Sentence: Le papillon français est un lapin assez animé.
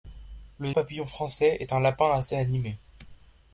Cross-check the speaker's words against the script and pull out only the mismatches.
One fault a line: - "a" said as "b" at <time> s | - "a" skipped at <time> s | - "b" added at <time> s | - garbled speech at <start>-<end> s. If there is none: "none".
none